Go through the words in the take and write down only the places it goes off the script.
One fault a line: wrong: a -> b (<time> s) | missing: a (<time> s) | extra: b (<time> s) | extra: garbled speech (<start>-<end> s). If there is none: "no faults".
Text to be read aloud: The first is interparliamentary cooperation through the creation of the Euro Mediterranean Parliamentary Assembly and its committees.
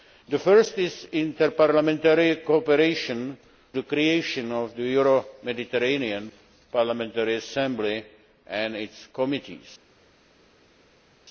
missing: through (3.4 s)